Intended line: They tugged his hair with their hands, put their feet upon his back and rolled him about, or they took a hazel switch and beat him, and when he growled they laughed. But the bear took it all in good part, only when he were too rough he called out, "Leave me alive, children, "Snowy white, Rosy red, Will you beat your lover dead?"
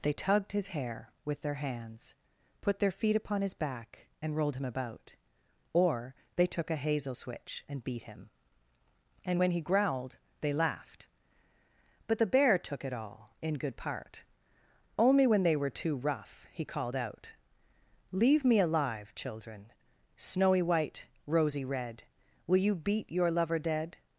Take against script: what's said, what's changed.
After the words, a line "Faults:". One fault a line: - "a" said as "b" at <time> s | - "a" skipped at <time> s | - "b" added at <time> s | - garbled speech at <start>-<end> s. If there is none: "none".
They tugged his hair with their hands, put their feet upon his back and rolled him about, or they took a hazel switch and beat him, and when he growled they laughed. But the bear took it all in good part, only when they were too rough he called out, "Leave me alive, children, "Snowy white, Rosy red, Will you beat your lover dead?"
Faults:
- "he" said as "they" at 15.4 s